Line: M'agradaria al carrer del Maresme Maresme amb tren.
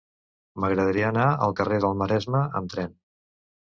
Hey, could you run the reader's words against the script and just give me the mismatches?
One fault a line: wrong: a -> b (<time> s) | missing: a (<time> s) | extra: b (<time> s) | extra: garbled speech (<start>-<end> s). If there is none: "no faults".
extra: anar (1.1 s)
missing: Maresme (2.4 s)